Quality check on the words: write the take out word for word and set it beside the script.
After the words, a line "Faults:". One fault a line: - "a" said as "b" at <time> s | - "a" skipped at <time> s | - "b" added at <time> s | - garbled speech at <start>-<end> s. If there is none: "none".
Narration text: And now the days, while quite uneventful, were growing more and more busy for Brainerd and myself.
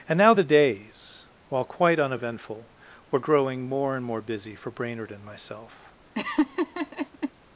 And now the days, while quite uneventful, were growing more and more busy for Brainerd and myself.
Faults:
none